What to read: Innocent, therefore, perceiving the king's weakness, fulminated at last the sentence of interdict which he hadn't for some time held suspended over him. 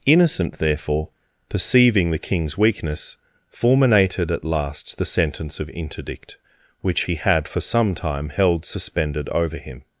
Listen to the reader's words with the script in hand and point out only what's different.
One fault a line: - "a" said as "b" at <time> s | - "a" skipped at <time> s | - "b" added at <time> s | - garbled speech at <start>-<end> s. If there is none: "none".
- "hadn't" said as "had" at 7.2 s